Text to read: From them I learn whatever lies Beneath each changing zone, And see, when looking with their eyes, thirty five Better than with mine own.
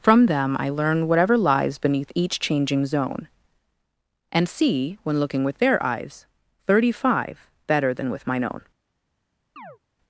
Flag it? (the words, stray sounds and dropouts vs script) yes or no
yes